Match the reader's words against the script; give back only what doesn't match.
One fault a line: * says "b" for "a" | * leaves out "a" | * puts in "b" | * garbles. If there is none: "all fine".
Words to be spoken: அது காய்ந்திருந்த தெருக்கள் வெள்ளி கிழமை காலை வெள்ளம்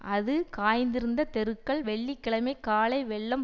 all fine